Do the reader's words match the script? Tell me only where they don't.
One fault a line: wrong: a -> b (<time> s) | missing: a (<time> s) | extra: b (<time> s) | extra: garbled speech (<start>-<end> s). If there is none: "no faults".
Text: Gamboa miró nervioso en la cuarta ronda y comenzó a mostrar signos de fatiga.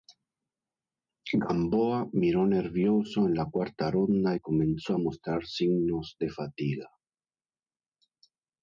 no faults